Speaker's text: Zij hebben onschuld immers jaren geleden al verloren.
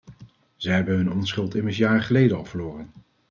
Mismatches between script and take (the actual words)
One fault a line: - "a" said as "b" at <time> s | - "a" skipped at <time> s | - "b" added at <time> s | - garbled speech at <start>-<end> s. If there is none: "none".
- "hun" added at 0.9 s